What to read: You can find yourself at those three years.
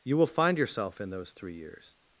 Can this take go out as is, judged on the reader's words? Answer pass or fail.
fail